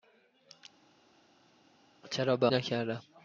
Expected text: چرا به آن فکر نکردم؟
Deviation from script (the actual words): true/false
true